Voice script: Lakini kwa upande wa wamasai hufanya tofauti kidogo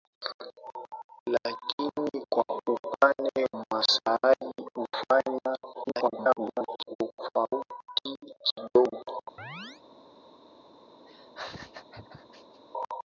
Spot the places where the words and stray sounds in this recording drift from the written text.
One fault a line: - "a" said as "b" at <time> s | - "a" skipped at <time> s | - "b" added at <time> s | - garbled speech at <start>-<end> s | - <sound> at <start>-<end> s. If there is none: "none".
- "wa" skipped at 3.5 s
- garbled speech at 5.7-7.0 s
- chirp at 9.4-9.8 s
- laugh at 11.1-12.6 s